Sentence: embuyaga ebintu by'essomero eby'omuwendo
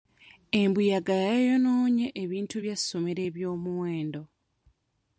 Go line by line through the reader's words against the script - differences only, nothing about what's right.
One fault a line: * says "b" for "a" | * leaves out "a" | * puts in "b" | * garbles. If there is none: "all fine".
* puts in "yayonoonye"